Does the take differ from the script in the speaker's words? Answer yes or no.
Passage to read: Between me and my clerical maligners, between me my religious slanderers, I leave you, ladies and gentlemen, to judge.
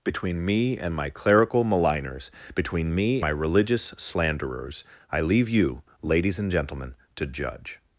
no